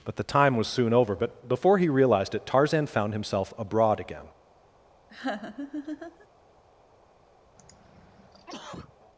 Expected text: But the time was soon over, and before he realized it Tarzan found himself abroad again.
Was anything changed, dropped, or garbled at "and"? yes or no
yes